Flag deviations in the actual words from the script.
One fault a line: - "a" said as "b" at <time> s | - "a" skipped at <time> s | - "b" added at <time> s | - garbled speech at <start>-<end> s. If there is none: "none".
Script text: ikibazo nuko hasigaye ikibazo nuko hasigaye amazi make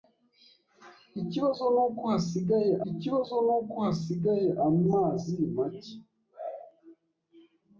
none